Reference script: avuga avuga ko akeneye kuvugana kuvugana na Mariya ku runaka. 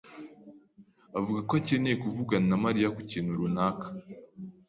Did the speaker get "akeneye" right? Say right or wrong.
right